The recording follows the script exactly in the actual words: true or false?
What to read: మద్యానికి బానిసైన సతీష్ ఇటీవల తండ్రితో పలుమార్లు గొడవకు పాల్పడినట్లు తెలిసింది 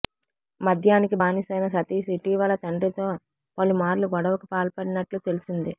true